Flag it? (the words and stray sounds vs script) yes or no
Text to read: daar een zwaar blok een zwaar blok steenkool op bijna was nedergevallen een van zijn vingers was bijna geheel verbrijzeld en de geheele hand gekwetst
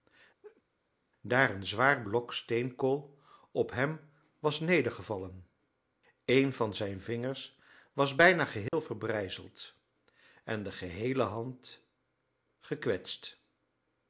yes